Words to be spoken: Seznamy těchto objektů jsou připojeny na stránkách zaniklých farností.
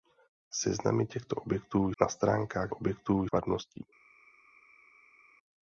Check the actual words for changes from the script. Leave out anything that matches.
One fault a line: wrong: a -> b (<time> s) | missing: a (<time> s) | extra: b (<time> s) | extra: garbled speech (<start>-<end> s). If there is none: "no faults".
missing: jsou připojeny (1.9 s)
wrong: zaniklých -> objektů (2.7 s)